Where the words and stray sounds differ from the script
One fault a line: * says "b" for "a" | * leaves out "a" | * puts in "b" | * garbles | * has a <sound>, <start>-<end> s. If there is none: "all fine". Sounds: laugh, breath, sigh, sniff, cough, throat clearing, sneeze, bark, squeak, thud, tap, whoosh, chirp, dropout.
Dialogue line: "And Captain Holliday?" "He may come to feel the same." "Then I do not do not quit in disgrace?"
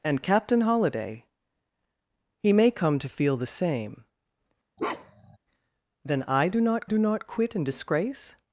* has a bark, 4.8-5.4 s